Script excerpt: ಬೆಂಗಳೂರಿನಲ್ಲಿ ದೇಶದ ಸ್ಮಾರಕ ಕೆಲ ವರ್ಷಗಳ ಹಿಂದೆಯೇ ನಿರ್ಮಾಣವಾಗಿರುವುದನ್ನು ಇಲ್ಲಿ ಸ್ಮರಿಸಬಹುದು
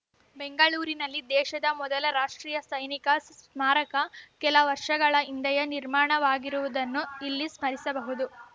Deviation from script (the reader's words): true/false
true